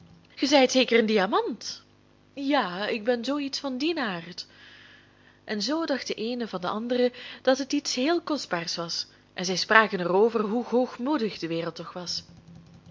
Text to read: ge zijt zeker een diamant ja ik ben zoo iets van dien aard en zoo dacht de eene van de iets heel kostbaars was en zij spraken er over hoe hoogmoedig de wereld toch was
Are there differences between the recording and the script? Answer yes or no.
yes